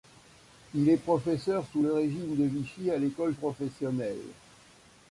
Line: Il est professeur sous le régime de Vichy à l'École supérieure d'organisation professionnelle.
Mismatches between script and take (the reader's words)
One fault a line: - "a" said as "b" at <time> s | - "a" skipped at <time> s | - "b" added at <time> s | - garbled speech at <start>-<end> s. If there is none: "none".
- "supérieure d'organisation" skipped at 3.3 s